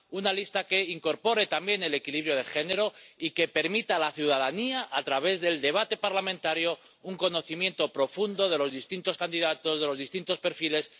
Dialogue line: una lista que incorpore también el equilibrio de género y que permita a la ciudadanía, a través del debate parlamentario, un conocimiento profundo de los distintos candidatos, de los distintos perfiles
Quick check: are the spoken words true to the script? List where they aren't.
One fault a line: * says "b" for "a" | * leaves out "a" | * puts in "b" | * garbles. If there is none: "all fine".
all fine